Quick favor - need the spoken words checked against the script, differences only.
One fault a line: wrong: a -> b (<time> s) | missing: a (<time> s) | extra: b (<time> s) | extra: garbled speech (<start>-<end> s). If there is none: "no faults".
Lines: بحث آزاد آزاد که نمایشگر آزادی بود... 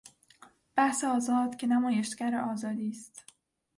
missing: آزاد (1.6 s)
wrong: بود -> است (2.9 s)